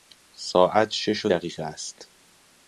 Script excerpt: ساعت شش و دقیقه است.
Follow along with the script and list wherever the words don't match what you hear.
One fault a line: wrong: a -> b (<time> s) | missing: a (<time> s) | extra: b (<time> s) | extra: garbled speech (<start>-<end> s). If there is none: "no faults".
no faults